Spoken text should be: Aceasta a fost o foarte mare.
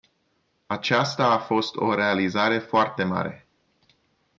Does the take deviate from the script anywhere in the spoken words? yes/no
yes